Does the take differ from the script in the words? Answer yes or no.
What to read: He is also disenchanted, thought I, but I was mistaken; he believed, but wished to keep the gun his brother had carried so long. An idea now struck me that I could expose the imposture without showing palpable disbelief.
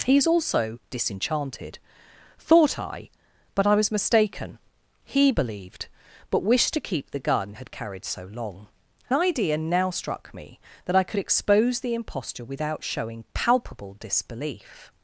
yes